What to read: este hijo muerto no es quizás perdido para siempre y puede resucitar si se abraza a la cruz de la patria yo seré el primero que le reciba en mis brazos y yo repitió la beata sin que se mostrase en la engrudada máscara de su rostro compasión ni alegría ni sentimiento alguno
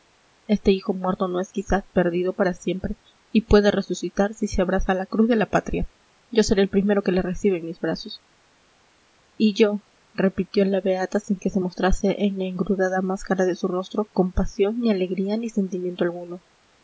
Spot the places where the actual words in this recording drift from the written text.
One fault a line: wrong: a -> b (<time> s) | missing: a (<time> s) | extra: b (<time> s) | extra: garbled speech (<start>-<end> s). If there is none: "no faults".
no faults